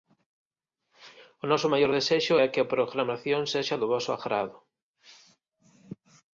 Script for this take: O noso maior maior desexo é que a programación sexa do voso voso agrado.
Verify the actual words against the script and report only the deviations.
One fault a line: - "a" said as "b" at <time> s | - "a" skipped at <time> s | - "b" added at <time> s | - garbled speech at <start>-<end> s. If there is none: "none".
- "maior" skipped at 1.9 s
- "voso" skipped at 4.1 s